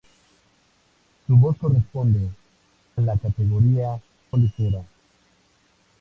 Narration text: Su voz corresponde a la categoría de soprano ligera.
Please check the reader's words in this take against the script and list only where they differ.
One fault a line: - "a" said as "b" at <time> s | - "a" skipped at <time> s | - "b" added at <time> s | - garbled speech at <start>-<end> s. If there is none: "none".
- "a" skipped at 2.3 s
- "de soprano" skipped at 4.0 s